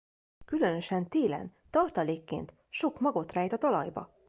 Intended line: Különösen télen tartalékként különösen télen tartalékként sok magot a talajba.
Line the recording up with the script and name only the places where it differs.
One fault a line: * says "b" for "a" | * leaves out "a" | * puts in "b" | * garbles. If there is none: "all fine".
* leaves out "különösen télen tartalékként"
* puts in "rejt"